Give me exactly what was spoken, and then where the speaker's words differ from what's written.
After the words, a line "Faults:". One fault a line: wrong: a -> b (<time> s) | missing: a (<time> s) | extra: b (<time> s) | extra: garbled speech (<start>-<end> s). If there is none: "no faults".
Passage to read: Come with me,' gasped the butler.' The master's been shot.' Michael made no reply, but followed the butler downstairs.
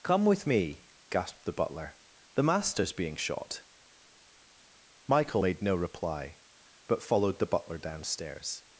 Come with me,' gasped the butler.' The master's being shot.' Michael made no reply, but followed the butler downstairs.
Faults:
wrong: been -> being (2.9 s)